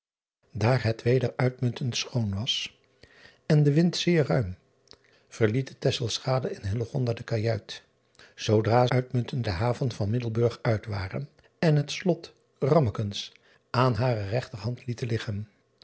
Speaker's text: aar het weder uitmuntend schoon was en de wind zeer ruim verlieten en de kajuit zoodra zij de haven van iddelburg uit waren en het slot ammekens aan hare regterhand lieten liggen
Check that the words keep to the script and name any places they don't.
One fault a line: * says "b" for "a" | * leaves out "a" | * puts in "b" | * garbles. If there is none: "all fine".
* says "uitmuntend" for "zij"